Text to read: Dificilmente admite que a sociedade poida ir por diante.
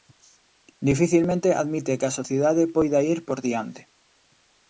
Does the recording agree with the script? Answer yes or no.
yes